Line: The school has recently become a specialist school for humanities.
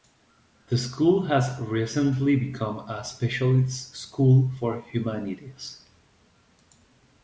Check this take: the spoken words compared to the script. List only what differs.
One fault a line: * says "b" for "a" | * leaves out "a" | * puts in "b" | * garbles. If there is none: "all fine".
all fine